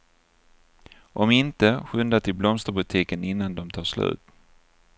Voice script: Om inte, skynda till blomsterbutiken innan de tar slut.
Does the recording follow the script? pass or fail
pass